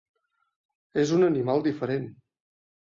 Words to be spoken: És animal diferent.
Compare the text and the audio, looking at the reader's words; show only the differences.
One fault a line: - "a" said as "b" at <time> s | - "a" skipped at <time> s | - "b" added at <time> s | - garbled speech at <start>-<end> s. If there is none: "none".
- "un" added at 1.2 s